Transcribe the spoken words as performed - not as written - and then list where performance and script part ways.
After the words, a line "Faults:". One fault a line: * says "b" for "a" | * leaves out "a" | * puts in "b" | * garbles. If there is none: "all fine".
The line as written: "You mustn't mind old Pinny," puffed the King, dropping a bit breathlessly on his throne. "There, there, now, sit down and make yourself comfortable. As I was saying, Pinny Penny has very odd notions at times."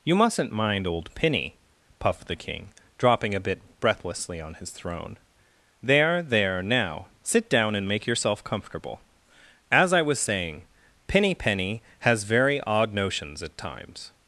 "You mustn't mind old Pinny," puffed the King, dropping a bit breathlessly on his throne. "There, there, now, sit down and make yourself comfortable. As I was saying, Pinny Penny has very odd notions at times."
Faults:
all fine